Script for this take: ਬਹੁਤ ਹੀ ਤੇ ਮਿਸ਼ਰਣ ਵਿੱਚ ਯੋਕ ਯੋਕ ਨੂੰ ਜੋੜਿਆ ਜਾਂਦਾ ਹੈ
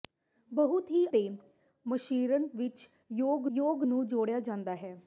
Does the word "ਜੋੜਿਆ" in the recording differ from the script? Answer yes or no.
no